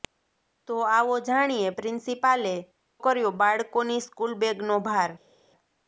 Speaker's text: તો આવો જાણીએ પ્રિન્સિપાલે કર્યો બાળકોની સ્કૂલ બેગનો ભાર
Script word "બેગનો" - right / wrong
right